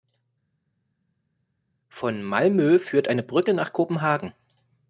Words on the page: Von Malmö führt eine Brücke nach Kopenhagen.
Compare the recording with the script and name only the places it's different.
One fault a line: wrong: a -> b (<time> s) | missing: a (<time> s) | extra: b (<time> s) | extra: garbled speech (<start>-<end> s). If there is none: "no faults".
no faults